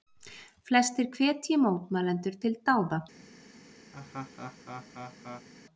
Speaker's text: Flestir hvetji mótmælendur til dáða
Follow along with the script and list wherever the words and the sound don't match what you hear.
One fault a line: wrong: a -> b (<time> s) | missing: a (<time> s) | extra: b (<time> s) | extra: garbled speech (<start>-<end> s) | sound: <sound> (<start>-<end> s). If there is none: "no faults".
sound: laugh (3.9-5.5 s)